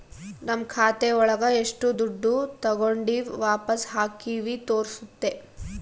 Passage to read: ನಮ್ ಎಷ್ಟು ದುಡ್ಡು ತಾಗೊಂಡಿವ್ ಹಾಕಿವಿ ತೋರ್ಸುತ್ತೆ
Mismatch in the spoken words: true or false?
true